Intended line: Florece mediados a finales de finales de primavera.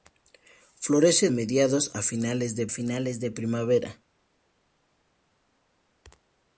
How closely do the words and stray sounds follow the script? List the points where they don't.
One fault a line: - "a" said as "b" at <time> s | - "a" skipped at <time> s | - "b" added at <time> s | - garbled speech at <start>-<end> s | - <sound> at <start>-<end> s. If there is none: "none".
none